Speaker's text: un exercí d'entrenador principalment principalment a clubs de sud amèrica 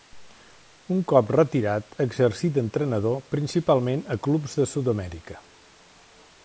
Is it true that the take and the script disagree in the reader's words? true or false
true